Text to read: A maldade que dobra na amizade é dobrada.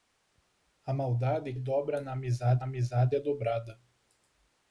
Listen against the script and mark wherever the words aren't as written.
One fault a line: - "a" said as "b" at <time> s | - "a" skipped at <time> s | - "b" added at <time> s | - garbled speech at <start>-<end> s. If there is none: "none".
- "que" skipped at 1.5 s
- "amizade" added at 2.6 s